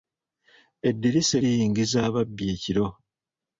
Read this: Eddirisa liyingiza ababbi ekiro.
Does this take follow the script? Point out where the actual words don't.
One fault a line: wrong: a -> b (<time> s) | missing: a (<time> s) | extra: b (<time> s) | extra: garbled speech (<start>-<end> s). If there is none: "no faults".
no faults